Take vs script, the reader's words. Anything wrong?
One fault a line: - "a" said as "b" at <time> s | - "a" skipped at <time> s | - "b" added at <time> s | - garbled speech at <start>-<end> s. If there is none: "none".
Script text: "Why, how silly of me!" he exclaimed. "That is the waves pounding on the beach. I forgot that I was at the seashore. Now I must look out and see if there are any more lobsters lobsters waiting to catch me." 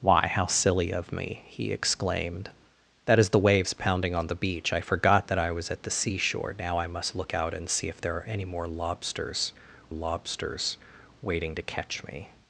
none